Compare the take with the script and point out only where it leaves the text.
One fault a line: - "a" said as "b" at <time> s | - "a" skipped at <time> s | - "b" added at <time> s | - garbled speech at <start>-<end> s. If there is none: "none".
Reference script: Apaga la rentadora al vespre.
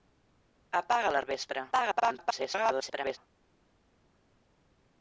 - "rentadora" skipped at 1.2 s
- garbled speech at 1.7-3.2 s